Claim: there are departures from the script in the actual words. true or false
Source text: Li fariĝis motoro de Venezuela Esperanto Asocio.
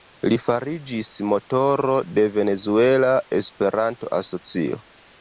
false